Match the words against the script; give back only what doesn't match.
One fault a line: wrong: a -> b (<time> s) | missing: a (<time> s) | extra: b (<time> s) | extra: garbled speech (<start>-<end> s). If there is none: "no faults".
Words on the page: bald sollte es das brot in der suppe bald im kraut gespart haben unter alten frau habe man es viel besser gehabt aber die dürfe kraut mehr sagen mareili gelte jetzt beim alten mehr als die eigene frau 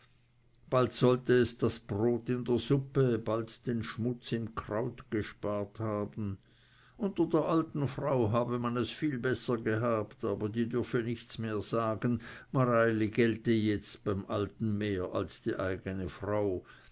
extra: den schmutz (3.7 s)
extra: der (7.3 s)
wrong: kraut -> nichts (11.0 s)